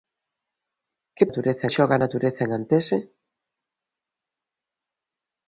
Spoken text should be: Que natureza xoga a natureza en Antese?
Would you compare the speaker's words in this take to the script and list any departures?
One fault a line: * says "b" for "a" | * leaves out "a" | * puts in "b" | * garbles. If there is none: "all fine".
all fine